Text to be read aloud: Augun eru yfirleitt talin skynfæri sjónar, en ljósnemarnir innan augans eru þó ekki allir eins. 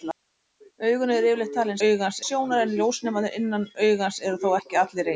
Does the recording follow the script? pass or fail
fail